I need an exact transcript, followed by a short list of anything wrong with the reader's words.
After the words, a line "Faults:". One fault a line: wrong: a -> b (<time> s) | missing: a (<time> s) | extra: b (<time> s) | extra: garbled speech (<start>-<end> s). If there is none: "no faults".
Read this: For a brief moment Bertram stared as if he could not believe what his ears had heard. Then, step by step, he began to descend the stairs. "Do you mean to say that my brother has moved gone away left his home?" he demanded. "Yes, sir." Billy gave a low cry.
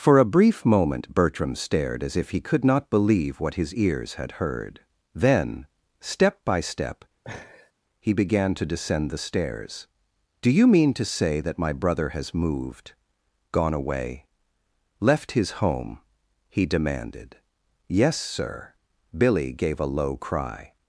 For a brief moment Bertram stared as if he could not believe what his ears had heard. Then, step by step, he began to descend the stairs. "Do you mean to say that my brother has moved gone away left his home?" he demanded. "Yes, sir." Billy gave a low cry.
Faults:
no faults